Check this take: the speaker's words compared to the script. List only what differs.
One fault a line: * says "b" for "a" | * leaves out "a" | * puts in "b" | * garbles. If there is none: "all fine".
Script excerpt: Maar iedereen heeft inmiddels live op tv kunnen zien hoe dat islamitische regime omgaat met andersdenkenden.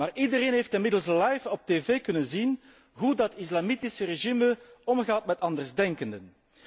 all fine